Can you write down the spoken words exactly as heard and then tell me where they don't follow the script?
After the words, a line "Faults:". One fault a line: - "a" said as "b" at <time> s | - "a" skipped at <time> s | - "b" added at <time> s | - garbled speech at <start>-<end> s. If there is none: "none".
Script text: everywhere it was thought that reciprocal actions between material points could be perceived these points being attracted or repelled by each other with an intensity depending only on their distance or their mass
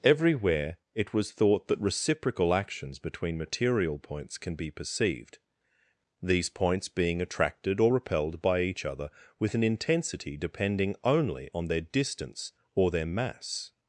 everywhere it was thought that reciprocal actions between material points can be perceived these points being attracted or repelled by each other with an intensity depending only on their distance or their mass
Faults:
- "could" said as "can" at 4.4 s